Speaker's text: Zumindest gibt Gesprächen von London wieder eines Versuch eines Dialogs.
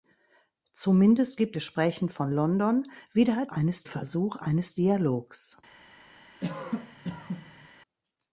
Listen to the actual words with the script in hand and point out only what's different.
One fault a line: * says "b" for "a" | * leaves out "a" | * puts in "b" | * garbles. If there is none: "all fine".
all fine